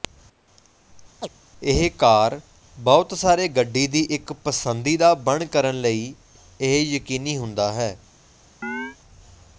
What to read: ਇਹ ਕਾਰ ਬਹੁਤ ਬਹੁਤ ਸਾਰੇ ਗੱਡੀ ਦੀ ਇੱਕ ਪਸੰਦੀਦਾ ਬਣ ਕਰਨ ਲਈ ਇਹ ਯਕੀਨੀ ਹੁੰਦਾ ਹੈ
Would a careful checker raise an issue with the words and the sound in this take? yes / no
yes